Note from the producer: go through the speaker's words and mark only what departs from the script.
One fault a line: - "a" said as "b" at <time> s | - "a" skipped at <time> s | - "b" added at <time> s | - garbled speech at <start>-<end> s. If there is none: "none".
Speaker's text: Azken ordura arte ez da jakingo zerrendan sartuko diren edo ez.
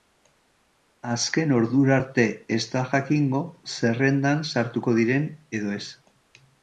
none